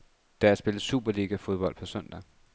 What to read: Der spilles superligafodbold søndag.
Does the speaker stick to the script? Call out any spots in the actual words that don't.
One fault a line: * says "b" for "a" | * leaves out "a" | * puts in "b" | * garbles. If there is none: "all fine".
* puts in "på"